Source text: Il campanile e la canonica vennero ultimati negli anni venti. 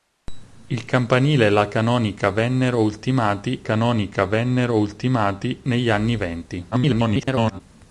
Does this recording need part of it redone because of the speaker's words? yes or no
yes